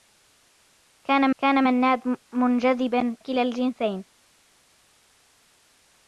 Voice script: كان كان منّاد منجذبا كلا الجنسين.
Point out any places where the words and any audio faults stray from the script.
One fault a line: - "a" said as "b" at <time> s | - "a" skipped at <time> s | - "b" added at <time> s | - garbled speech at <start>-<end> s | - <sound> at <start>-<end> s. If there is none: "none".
none